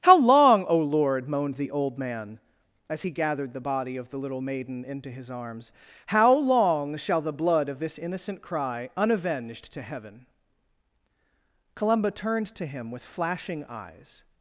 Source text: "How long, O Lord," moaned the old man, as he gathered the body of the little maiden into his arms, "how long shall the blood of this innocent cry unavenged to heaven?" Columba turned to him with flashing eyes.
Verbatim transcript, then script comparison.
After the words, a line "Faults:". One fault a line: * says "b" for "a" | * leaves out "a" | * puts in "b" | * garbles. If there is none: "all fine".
"How long, O Lord," moaned the old man, as he gathered the body of the little maiden into his arms, "how long shall the blood of this innocent cry unavenged to heaven?" Columba turned to him with flashing eyes.
Faults:
all fine